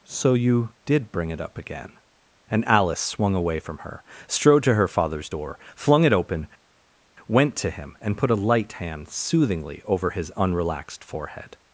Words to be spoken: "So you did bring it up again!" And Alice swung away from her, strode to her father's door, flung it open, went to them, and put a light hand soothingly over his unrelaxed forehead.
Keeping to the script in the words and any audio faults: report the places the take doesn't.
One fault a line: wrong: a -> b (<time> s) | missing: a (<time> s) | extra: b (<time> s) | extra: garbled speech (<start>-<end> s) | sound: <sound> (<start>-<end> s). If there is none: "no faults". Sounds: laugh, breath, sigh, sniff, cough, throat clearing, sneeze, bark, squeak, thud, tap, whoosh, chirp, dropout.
wrong: them -> him (7.7 s)